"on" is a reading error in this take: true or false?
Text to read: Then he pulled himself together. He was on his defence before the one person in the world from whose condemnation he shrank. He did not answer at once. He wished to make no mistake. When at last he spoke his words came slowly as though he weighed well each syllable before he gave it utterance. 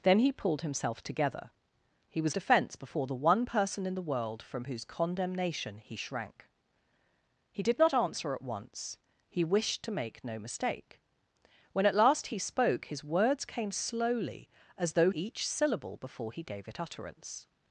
true